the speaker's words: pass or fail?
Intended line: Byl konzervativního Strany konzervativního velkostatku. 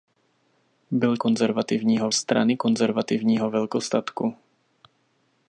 pass